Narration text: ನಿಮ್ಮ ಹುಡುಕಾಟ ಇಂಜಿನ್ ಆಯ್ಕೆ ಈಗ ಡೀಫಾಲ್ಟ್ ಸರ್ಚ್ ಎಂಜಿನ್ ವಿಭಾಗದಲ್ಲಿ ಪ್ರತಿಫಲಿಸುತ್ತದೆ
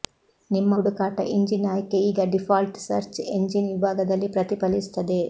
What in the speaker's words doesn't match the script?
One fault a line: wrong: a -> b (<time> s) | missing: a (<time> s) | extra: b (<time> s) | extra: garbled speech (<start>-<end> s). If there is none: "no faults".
no faults